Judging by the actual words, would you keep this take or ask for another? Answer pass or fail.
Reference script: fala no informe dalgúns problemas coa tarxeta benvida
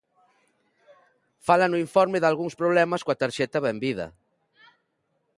pass